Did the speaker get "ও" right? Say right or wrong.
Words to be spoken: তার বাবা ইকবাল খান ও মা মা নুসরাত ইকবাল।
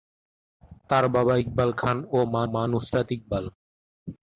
right